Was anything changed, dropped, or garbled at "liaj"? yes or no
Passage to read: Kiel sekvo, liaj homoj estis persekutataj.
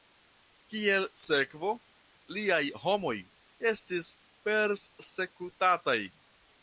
no